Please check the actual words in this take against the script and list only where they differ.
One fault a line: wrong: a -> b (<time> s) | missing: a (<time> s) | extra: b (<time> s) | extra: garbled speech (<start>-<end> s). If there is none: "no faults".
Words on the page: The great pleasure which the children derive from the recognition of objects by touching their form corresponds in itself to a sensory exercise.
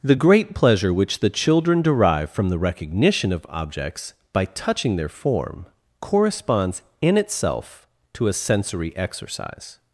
no faults